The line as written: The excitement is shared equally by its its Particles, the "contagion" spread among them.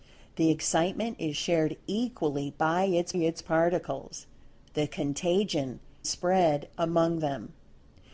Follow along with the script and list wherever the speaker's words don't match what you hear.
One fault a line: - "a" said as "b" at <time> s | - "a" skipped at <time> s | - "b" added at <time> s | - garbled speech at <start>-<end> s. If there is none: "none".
none